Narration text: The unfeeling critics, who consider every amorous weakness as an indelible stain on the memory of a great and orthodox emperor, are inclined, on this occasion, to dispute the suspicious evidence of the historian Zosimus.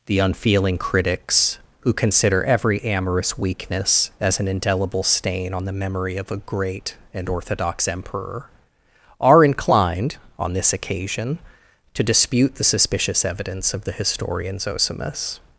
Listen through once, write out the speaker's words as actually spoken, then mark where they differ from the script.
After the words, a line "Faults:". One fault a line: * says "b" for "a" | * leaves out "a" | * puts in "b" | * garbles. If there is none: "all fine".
The unfeeling critics, who consider every amorous weakness as an indelible stain on the memory of a great and orthodox emperor, are inclined, on this occasion, to dispute the suspicious evidence of the historian Zosimus.
Faults:
all fine